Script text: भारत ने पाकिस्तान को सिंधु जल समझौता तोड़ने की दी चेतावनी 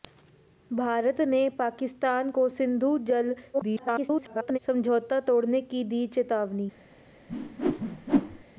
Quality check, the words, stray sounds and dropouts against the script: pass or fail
fail